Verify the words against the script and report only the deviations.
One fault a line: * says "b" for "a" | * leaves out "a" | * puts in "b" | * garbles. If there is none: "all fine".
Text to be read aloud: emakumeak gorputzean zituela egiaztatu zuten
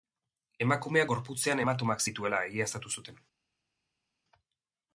* puts in "hematomak"